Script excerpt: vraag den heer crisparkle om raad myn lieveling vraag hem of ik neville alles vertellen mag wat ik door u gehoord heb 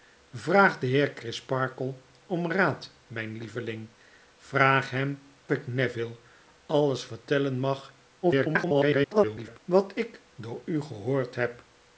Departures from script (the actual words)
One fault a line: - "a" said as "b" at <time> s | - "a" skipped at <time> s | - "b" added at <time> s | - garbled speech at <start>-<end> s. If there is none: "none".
- "of" skipped at 5.2 s
- garbled speech at 8.2-9.6 s